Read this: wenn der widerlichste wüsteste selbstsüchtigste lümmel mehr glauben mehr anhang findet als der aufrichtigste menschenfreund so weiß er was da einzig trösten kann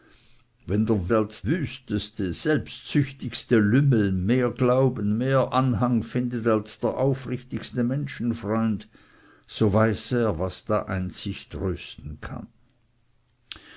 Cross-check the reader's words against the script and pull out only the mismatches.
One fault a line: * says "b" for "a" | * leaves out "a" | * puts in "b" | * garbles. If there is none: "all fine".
* says "als" for "widerlichste"